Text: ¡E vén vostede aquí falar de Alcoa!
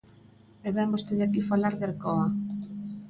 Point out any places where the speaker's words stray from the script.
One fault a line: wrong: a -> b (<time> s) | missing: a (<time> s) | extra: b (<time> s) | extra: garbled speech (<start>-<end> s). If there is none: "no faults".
no faults